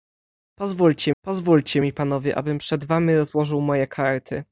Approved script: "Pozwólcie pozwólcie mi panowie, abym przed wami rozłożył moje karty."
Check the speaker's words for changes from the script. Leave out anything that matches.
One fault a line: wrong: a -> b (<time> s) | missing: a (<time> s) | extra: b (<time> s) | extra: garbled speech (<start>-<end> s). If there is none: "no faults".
no faults